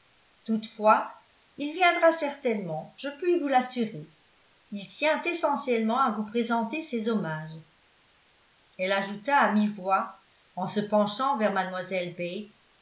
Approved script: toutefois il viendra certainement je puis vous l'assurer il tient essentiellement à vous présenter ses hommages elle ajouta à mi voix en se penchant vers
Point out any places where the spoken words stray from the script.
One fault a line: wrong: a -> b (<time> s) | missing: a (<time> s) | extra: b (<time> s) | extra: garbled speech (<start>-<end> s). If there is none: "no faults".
no faults